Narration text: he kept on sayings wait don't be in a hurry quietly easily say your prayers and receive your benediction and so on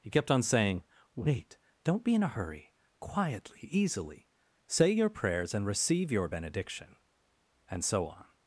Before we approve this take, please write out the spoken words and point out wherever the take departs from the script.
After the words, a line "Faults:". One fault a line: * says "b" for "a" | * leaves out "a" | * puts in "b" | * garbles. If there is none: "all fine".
he kept on saying wait don't be in a hurry quietly easily say your prayers and receive your benediction and so on
Faults:
* says "saying" for "sayings"